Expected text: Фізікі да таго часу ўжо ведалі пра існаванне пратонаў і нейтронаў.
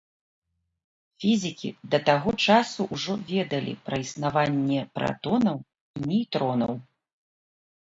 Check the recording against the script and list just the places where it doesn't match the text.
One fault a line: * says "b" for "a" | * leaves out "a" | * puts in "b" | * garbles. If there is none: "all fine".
all fine